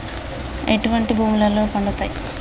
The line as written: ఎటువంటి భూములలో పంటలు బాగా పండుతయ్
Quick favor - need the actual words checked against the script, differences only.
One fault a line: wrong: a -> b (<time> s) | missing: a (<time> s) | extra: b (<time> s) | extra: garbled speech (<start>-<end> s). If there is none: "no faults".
missing: పంటలు బాగా (1.6 s)